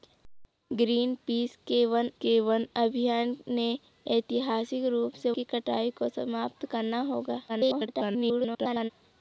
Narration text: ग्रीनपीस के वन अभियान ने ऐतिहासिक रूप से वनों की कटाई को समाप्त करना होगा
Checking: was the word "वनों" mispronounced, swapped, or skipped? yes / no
yes